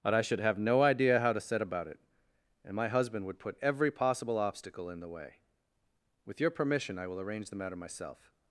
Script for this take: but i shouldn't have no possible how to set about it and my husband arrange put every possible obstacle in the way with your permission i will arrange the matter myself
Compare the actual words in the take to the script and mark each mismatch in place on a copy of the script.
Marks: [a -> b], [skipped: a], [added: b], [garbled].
but i [shouldn't -> should] have no [possible -> idea] how to set about it and my husband [arrange -> would] put every possible obstacle in the way with your permission i will arrange the matter myself